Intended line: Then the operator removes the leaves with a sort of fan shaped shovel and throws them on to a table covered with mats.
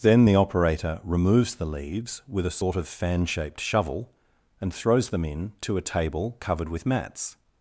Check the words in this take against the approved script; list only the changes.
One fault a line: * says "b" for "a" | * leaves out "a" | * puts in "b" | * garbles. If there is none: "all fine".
* says "in" for "on"